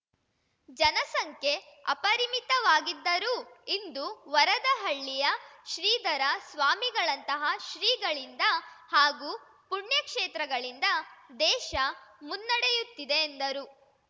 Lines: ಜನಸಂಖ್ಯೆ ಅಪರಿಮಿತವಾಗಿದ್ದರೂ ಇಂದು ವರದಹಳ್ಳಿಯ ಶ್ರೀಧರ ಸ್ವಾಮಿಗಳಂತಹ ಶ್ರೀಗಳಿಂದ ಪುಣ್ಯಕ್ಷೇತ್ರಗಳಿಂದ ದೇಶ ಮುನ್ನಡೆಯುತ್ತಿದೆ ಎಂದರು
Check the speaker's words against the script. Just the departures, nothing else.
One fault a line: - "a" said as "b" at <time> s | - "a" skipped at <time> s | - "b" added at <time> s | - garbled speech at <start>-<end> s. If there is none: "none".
- "ಹಾಗೂ" added at 8.9 s